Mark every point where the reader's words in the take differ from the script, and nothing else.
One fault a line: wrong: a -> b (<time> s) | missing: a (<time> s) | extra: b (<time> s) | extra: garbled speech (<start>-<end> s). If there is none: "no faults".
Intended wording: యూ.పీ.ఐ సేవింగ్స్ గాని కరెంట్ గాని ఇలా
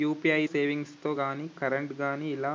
no faults